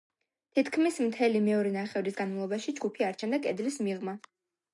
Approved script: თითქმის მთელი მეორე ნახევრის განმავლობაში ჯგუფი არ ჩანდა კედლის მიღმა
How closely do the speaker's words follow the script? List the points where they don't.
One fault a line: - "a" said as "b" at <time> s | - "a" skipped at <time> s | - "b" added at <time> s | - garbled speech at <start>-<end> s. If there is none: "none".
none